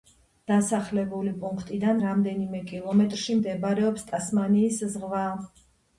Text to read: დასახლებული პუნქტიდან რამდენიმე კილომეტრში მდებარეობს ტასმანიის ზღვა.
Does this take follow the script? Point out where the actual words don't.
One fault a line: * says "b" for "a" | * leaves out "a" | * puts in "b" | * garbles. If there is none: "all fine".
all fine